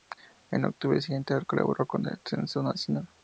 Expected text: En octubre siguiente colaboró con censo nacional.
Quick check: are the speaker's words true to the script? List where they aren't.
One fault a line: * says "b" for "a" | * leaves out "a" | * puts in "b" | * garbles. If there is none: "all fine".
* puts in "el"